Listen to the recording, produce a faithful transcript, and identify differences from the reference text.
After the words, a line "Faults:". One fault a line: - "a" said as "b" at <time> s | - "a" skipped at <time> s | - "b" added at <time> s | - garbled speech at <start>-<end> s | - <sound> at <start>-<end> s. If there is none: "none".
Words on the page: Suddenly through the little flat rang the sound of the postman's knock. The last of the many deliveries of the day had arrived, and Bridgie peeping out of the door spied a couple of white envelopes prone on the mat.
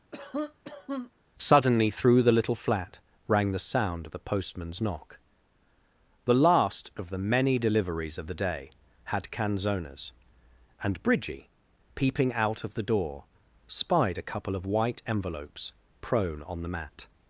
Suddenly through the little flat rang the sound of the postman's knock. The last of the many deliveries of the day had canzonas, and Bridgie peeping out of the door spied a couple of white envelopes prone on the mat.
Faults:
- cough at 0.1-1.1 s
- "arrived" said as "canzonas" at 9.3 s